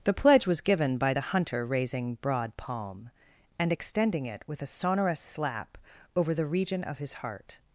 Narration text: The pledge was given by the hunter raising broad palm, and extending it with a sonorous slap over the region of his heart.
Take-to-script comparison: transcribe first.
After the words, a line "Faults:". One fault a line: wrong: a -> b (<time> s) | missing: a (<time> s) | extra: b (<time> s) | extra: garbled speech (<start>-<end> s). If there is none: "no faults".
The pledge was given by the hunter raising broad palm, and extending it with a sonorous slap over the region of his heart.
Faults:
no faults